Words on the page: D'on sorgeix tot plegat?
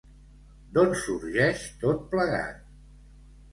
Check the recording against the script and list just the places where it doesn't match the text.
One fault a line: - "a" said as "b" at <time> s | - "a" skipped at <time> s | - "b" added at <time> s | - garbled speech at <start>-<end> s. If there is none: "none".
none